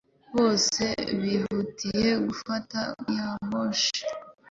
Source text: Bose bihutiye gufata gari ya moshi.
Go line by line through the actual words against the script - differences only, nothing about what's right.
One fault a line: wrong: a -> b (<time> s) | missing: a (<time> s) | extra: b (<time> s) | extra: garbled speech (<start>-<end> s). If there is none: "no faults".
missing: gari (2.8 s)